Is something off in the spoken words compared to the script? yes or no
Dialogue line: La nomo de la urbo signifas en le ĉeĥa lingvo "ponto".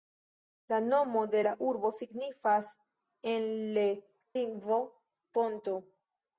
yes